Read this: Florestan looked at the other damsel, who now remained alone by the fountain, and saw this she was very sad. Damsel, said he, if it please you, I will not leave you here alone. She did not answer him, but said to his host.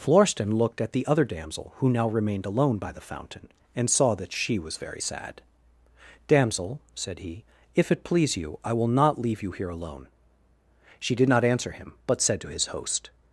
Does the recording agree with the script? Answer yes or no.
no